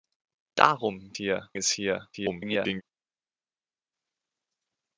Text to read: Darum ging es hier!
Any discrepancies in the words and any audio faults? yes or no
yes